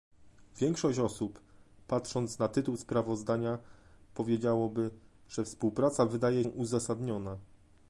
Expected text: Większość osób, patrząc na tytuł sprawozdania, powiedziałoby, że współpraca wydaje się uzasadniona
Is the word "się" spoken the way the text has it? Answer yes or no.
no